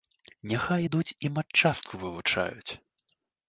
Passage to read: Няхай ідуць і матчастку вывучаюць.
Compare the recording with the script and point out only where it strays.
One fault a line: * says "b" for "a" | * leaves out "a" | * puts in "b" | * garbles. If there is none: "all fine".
all fine